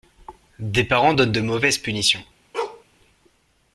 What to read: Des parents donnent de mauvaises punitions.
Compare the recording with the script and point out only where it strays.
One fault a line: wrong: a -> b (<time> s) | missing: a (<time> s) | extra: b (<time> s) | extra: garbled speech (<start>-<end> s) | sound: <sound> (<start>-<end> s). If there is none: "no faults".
sound: bark (2.5-2.8 s)